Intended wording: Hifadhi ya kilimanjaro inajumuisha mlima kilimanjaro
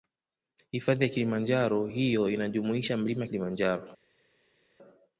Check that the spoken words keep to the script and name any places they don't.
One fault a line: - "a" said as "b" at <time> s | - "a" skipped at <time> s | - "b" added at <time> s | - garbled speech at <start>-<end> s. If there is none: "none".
- "hiyo" added at 1.9 s